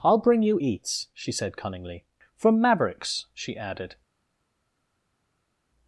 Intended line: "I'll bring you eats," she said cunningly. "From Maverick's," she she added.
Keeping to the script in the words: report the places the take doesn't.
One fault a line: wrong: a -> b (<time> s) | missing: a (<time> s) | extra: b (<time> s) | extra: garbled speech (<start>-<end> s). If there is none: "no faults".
missing: she (3.6 s)